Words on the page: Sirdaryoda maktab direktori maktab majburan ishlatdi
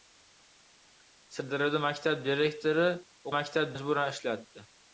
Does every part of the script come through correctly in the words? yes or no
yes